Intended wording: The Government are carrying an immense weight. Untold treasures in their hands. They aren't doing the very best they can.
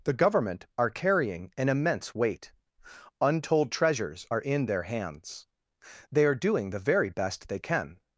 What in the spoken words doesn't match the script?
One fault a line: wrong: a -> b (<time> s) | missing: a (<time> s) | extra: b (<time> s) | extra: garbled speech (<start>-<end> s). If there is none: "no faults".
extra: are (4.3 s)
wrong: aren't -> are (6.2 s)